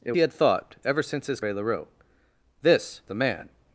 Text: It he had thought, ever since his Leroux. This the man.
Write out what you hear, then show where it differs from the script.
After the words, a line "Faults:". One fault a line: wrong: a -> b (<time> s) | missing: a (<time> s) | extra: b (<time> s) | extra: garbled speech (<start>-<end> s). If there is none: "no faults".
It he had thought, ever since his Leroux. This the man.
Faults:
no faults